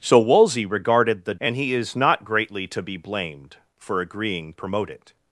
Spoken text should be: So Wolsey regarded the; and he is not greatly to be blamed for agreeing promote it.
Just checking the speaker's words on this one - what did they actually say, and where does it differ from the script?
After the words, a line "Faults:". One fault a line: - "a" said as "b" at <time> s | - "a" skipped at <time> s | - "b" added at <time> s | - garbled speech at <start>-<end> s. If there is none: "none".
So Wolsey regarded the; and he is not greatly to be blamed for agreeing promote it.
Faults:
none